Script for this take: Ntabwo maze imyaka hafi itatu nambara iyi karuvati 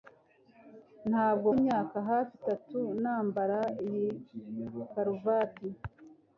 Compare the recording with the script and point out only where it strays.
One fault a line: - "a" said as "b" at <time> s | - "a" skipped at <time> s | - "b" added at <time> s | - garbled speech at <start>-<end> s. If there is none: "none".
- "maze" skipped at 1.5 s